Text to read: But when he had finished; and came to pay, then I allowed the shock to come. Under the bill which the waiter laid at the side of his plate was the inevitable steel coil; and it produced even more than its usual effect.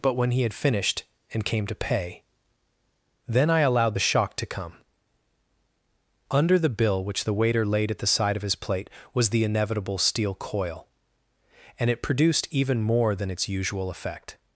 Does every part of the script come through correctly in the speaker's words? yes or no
yes